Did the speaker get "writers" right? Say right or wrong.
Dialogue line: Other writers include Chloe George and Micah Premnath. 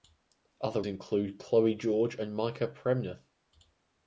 wrong